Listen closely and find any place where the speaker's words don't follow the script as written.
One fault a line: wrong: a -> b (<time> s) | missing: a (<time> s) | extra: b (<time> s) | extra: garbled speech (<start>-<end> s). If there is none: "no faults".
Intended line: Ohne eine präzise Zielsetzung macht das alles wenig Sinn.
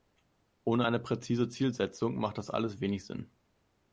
no faults